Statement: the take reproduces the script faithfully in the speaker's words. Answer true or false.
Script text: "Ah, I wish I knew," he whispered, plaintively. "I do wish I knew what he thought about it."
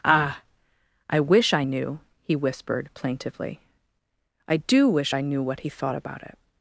true